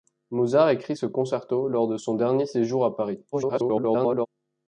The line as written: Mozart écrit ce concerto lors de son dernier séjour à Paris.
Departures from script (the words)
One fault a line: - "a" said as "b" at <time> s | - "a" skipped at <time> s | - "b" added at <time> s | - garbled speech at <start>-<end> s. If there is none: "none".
- garbled speech at 3.3-4.3 s